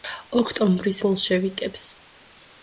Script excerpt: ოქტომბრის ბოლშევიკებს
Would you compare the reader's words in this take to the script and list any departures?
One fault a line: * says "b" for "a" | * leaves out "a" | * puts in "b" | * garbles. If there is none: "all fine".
all fine